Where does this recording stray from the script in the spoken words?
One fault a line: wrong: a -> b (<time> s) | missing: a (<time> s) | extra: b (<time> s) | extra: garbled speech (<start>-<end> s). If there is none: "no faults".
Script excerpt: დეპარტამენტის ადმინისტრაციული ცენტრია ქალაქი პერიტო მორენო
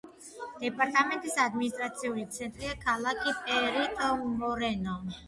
no faults